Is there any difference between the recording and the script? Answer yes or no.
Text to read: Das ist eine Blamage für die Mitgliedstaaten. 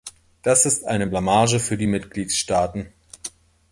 no